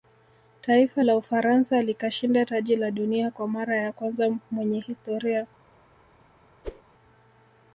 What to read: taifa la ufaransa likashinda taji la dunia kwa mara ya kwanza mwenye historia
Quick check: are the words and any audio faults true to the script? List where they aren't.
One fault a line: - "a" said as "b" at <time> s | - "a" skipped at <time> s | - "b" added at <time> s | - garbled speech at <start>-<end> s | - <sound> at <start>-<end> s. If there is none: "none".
- whoosh at 6.6-6.8 s